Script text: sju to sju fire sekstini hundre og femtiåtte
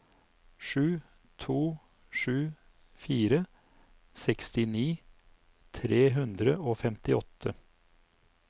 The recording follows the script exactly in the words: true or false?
false